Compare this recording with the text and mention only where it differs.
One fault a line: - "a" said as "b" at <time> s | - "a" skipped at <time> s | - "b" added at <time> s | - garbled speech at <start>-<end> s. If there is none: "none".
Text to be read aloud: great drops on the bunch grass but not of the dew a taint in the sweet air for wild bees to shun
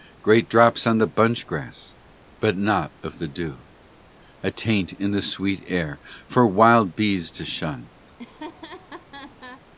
none